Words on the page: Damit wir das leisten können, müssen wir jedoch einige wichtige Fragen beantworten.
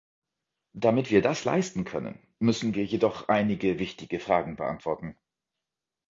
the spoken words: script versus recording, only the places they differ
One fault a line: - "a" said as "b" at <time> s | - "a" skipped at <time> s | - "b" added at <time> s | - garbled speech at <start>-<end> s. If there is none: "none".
none